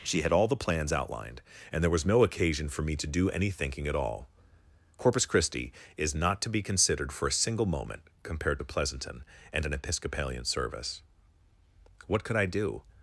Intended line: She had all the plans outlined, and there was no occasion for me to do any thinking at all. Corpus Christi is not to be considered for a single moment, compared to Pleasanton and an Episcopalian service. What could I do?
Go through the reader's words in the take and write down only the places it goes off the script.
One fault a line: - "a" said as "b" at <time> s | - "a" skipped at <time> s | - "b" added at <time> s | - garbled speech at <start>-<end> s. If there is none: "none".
none